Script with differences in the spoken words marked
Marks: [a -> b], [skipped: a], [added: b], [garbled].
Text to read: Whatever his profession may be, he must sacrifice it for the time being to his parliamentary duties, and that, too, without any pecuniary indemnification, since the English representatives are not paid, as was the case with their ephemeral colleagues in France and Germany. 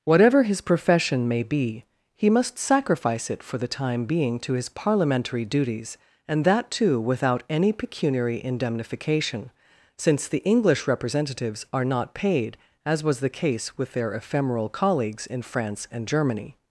Whatever his profession may be, he must sacrifice it for the time being to his parliamentary duties, and that, too, without any pecuniary indemnification, since the English representatives are not paid, as was the case with their ephemeral colleagues in France and Germany.